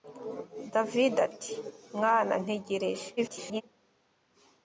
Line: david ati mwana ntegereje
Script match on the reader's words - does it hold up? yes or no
no